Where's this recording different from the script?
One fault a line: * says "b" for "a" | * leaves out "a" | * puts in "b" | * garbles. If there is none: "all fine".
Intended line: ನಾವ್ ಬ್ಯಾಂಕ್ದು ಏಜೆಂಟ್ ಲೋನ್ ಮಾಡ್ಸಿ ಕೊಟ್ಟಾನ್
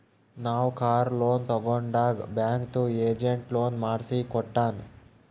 * puts in "ಕಾರ್ ಲೋನ್ ತಗೊಂಡಾಗ್"